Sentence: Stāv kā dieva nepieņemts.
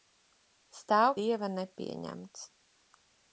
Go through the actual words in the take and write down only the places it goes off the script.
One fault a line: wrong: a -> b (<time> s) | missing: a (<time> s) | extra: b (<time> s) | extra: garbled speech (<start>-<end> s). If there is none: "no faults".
missing: kā (1.1 s)